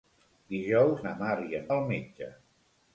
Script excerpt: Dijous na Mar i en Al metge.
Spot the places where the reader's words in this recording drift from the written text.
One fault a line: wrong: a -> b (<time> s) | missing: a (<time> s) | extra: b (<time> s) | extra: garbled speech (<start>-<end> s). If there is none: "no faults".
no faults